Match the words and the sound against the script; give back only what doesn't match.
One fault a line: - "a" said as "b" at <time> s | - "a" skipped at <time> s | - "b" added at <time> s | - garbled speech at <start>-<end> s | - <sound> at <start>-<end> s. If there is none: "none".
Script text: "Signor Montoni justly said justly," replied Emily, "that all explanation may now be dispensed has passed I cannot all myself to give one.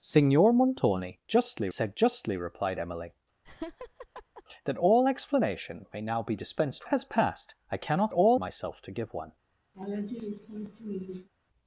- laugh at 3.4-4.4 s
- laugh at 9.7-11.3 s